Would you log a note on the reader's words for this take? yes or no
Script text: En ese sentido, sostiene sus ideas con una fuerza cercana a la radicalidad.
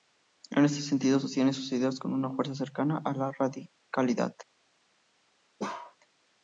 yes